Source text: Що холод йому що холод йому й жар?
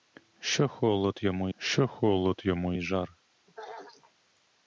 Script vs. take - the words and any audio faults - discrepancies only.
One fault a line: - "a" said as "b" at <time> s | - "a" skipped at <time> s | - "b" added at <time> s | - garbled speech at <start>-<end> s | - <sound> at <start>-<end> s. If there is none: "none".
- throat clearing at 3.5-4.1 s